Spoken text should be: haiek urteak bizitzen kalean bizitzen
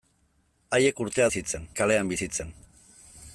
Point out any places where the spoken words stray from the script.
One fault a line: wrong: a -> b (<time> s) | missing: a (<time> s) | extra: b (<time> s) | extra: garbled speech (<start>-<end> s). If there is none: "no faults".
no faults